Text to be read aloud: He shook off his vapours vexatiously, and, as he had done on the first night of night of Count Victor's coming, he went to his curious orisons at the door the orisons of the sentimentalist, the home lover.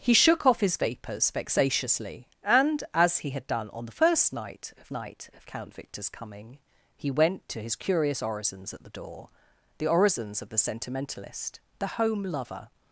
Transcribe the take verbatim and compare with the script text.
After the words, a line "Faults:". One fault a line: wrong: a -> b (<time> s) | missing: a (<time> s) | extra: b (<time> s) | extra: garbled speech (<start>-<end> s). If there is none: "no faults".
He shook off his vapours vexatiously, and, as he had done on the first night of night of Count Victor's coming, he went to his curious orisons at the door the orisons of the sentimentalist, the home lover.
Faults:
no faults